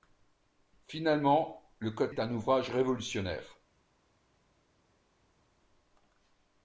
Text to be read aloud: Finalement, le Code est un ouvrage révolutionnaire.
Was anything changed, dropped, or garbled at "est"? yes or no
no